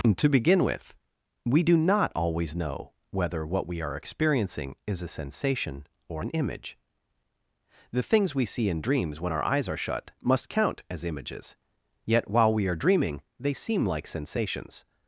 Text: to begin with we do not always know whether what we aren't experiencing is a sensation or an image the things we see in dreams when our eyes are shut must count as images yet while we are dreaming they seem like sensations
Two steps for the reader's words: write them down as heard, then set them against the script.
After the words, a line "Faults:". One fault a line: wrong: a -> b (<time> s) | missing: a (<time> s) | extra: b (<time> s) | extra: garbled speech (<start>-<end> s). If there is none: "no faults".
to begin with we do not always know whether what we are experiencing is a sensation or an image the things we see in dreams when our eyes are shut must count as images yet while we are dreaming they seem like sensations
Faults:
wrong: aren't -> are (3.8 s)